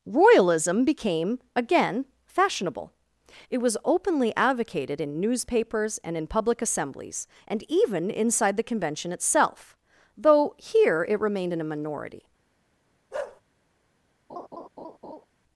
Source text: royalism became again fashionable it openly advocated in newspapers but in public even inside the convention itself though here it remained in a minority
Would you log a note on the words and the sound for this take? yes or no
yes